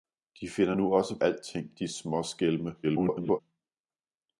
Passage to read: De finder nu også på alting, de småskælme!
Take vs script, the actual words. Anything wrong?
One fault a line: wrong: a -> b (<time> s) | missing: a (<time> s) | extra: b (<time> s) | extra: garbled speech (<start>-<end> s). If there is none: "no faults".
missing: på (1.2 s)
extra: garbled speech (2.8-3.4 s)